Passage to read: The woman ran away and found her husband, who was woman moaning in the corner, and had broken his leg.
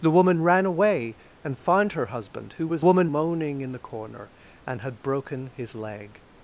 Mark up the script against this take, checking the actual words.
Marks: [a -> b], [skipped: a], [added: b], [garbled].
The woman ran away and found her husband, who was woman moaning in the corner, and had broken his leg.